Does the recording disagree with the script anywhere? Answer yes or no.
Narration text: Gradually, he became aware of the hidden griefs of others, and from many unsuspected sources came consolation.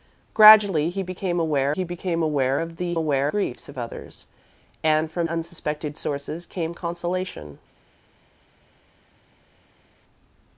yes